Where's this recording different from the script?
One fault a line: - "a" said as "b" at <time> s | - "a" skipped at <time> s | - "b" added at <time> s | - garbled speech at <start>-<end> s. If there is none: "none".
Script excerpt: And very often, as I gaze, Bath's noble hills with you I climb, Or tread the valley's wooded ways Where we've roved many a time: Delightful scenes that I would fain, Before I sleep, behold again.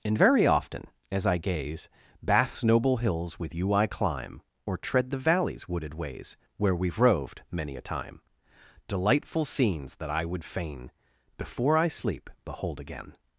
none